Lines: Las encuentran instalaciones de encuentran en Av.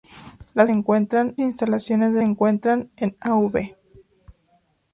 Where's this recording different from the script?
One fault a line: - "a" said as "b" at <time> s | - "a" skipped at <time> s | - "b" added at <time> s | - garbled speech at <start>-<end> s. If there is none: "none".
none